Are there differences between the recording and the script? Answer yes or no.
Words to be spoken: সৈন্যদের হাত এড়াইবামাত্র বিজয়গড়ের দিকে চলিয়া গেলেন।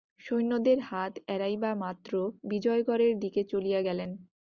no